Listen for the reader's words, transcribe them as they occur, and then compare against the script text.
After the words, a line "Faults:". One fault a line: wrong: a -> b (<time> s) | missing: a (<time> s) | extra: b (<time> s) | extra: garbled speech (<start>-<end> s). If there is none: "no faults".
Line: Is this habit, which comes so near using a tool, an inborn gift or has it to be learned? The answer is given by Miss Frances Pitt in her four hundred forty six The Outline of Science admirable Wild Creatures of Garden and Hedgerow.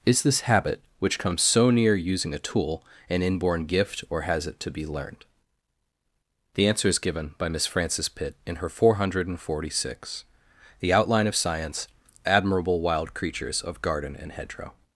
Is this habit, which comes so near using a tool, an inborn gift or has it to be learned? The answer is given by Miss Frances Pitt in her four hundred forty six The Outline of Science admirable Wild Creatures of Garden and Hedgerow.
Faults:
no faults